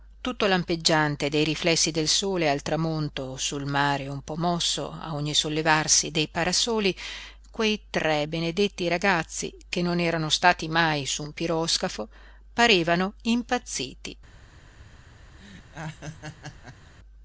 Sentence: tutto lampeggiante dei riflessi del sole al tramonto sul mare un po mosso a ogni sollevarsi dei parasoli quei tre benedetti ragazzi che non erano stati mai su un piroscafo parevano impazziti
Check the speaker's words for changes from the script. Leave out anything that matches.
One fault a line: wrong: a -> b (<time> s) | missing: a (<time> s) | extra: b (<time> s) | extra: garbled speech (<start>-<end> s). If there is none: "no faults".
no faults